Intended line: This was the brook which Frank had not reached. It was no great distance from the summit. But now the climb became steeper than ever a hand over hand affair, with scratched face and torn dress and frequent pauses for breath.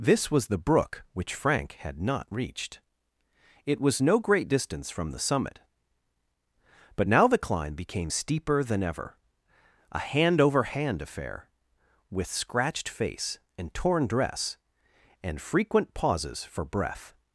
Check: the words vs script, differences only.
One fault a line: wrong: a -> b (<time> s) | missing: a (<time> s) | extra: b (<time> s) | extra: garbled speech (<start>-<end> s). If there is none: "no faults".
no faults